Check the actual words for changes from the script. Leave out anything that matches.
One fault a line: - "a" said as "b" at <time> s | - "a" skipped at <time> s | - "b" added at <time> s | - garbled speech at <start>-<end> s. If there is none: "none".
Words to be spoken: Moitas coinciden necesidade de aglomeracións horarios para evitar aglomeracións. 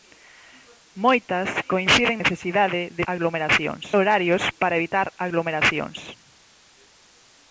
none